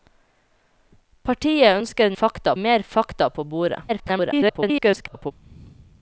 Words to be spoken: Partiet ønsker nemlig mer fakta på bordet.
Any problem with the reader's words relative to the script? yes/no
yes